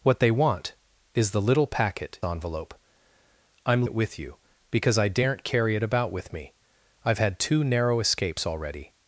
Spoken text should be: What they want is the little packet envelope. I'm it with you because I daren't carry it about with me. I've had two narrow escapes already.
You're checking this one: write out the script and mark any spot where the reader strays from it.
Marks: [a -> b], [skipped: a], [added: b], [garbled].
What they want is the little packet envelope. I'm it with you because I daren't carry it about with me. I've had two narrow escapes already.